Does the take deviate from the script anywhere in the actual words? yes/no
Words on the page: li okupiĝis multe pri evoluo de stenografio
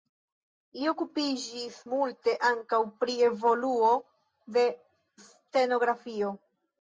yes